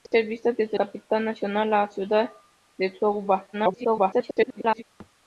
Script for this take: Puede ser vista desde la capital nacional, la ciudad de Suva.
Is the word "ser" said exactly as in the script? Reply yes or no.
yes